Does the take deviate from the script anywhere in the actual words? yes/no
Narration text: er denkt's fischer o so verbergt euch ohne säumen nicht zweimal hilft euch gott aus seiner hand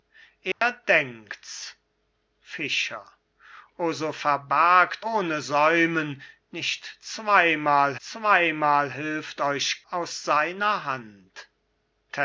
yes